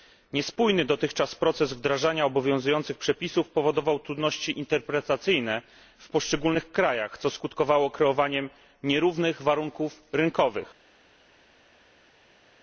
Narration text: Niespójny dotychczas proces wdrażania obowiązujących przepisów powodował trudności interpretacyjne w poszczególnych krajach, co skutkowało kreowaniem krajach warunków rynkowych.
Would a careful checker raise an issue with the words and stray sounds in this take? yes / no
yes